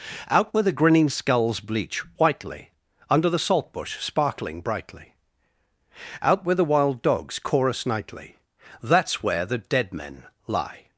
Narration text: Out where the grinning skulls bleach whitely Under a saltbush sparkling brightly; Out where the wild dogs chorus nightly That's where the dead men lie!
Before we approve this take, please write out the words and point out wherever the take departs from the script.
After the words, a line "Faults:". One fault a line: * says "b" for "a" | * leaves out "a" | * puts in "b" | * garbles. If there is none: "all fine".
Out where the grinning skulls bleach whitely Under the saltbush sparkling brightly; Out where the wild dogs chorus nightly That's where the dead men lie!
Faults:
* says "the" for "a"